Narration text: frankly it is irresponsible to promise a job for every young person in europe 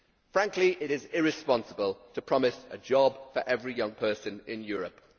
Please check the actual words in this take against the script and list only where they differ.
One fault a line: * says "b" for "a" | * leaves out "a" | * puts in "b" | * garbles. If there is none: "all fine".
all fine